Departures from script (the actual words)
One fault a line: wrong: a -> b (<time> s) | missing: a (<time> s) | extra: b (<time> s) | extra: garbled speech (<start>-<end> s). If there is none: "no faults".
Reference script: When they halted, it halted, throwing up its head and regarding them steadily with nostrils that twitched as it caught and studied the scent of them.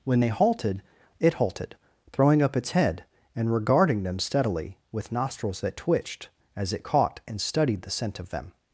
no faults